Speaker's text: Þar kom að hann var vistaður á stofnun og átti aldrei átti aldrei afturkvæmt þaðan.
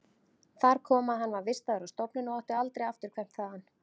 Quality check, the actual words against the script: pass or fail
fail